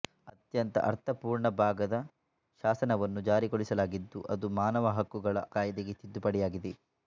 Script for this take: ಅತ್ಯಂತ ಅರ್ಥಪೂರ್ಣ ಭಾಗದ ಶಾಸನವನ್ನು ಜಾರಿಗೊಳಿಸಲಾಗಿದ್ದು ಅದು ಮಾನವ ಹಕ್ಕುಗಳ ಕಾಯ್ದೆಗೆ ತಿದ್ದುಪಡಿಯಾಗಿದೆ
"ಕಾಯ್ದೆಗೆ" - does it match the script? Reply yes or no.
yes